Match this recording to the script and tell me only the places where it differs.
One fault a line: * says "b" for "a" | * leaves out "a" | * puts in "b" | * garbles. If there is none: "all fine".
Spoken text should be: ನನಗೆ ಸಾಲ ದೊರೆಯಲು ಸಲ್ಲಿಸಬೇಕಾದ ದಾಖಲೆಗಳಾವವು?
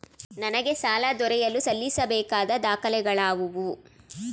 all fine